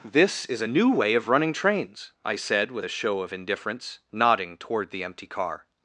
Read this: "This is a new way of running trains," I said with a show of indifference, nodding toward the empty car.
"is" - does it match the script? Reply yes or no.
yes